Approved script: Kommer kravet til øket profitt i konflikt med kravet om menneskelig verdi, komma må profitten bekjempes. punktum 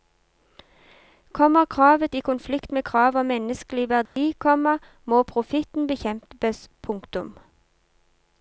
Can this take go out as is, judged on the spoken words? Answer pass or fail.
fail